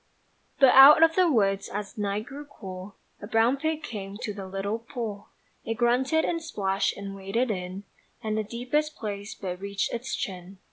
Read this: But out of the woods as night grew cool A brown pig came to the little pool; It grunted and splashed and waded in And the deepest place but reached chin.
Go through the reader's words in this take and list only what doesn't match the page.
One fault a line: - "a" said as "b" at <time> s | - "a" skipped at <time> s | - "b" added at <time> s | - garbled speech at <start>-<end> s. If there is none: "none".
- "its" added at 9.9 s